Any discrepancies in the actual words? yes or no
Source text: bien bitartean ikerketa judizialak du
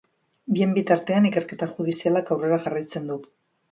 yes